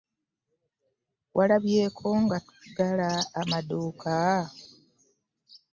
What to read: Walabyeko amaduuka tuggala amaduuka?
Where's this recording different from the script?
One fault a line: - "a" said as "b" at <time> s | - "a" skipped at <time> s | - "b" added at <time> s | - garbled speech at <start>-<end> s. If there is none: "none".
- "amaduuka" said as "nga" at 2.2 s